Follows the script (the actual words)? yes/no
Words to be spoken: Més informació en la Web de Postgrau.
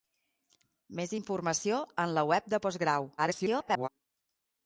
no